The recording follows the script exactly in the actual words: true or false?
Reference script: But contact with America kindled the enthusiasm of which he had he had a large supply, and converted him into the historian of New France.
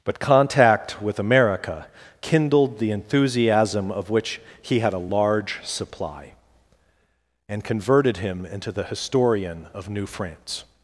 false